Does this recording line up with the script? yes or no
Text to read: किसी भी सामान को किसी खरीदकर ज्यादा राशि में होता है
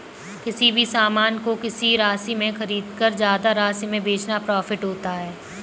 no